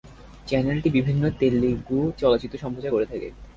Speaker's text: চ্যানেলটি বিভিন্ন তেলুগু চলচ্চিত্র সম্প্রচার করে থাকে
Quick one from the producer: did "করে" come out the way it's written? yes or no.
yes